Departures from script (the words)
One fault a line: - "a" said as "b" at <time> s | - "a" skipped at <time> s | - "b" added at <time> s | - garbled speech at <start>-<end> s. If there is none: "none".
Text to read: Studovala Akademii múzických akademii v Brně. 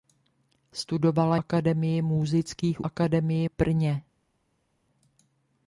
none